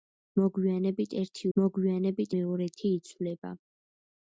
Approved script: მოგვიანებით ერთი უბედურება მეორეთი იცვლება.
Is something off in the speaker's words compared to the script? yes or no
yes